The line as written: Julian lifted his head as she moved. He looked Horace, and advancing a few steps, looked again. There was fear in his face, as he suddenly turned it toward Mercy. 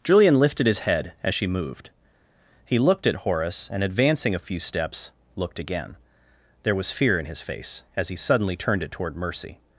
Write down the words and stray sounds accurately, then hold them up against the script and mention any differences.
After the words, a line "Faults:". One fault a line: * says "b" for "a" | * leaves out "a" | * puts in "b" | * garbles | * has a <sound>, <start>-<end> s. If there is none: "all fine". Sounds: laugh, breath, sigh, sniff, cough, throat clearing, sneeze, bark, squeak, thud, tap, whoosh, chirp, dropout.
Julian lifted his head as she moved. He looked at Horace, and advancing a few steps, looked again. There was fear in his face, as he suddenly turned it toward Mercy.
Faults:
* puts in "at"